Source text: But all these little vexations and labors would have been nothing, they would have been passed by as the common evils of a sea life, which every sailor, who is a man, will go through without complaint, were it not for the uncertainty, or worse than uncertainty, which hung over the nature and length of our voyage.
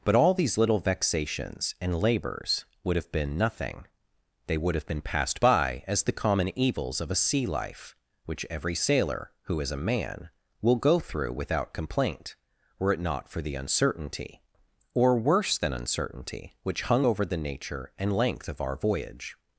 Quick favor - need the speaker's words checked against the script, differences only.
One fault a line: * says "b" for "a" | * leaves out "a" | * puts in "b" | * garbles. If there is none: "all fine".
all fine